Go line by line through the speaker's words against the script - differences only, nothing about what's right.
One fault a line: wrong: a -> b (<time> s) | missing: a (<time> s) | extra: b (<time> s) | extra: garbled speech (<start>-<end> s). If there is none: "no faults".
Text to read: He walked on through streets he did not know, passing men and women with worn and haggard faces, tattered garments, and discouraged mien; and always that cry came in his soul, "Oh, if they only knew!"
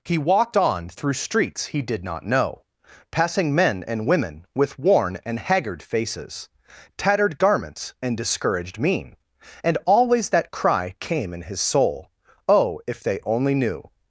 no faults